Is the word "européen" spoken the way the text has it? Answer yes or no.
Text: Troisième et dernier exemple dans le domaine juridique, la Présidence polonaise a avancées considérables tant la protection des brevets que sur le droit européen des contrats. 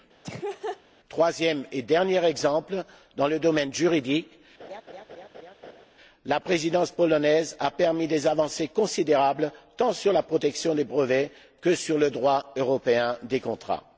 yes